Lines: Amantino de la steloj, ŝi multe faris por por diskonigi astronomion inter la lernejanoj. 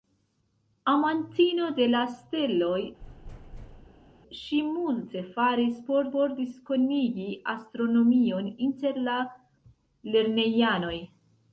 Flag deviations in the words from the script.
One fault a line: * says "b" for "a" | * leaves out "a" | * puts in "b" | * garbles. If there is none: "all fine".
all fine